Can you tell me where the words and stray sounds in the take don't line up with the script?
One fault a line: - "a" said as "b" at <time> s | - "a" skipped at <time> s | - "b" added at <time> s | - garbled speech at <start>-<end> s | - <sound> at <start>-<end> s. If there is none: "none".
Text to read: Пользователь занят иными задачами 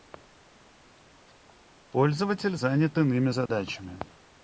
- dropout at 3.5-3.5 s